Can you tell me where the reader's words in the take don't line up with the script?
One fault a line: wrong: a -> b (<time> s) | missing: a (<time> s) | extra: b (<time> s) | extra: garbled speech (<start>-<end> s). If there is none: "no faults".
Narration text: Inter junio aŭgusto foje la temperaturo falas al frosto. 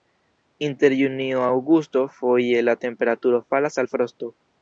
no faults